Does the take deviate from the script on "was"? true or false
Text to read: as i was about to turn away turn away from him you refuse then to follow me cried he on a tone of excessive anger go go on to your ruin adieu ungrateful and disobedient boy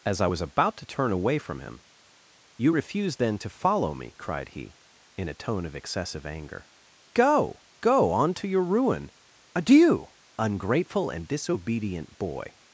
false